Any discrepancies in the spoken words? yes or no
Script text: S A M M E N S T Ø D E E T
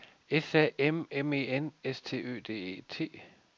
yes